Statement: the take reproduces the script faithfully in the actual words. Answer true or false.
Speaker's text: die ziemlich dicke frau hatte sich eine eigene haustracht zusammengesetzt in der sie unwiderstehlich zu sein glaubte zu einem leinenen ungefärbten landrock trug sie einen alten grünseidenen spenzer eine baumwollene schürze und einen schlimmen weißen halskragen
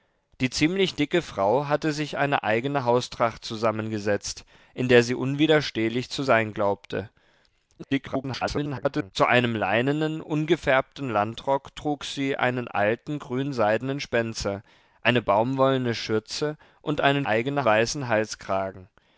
false